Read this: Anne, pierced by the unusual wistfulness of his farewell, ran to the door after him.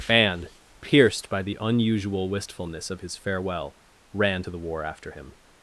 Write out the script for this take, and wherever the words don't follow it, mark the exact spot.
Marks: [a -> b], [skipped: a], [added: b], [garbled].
Anne, pierced by the unusual wistfulness of his farewell, ran to the [door -> war] after him.